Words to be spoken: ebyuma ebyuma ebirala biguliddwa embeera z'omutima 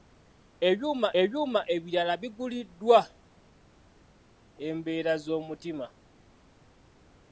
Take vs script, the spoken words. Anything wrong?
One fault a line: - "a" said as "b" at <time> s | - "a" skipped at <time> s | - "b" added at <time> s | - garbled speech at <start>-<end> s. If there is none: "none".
none